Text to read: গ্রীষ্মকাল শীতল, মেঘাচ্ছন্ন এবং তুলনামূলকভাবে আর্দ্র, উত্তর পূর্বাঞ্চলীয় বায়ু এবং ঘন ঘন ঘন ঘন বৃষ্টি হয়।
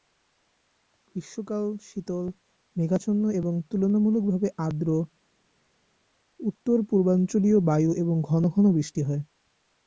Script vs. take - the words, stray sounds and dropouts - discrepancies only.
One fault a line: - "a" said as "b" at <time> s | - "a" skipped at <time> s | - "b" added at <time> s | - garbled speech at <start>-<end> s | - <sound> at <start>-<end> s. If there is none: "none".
- "ঘন ঘন" skipped at 8.6 s